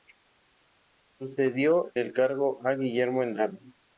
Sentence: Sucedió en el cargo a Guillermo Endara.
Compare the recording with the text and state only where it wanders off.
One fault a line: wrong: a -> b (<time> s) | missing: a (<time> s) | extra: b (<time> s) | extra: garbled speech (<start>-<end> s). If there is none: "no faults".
missing: en (1.9 s)